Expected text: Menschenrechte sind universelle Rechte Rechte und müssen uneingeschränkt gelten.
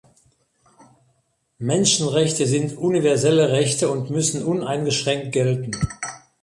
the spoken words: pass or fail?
fail